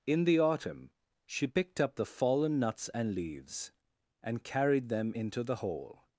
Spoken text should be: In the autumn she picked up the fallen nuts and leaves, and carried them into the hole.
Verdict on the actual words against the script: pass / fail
pass